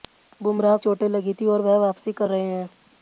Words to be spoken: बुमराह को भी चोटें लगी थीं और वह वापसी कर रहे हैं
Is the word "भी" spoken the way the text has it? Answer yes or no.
no